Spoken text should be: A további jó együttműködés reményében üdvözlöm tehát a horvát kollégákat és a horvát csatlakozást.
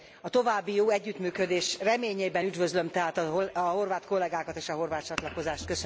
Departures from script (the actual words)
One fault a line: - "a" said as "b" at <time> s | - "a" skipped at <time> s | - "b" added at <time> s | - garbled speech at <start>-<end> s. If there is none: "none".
none